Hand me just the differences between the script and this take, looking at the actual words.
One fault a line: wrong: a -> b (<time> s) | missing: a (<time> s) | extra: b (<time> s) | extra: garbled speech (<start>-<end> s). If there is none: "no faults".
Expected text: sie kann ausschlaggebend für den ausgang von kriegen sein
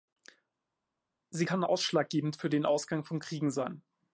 no faults